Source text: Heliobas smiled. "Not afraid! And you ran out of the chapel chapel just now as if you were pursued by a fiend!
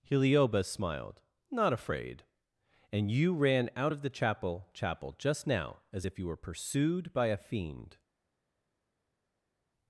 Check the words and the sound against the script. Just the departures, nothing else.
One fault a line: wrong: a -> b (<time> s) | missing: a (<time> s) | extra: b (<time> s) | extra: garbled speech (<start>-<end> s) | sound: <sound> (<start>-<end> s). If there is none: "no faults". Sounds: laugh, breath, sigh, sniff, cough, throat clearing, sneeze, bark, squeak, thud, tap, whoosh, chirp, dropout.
no faults